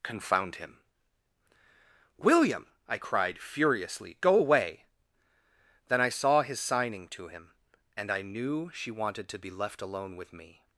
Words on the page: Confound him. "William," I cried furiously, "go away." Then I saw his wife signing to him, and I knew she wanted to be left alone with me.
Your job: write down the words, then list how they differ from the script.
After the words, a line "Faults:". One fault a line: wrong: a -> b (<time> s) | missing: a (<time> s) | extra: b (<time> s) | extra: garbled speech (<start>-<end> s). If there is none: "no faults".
Confound him. "William," I cried furiously, "go away." Then I saw his signing to him, and I knew she wanted to be left alone with me.
Faults:
missing: wife (6.6 s)